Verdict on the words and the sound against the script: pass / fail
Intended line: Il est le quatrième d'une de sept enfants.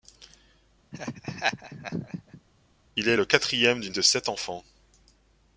fail